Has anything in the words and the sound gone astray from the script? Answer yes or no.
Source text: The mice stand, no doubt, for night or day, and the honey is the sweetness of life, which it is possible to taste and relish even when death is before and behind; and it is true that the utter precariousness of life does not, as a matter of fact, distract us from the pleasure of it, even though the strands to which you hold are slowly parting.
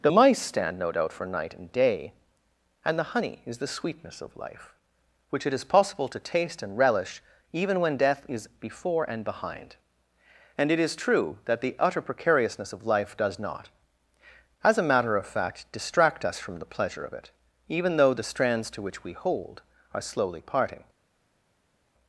yes